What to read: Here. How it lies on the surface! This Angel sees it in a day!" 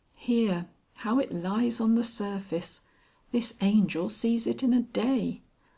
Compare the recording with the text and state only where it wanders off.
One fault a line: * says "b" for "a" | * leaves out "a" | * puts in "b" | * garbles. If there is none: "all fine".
all fine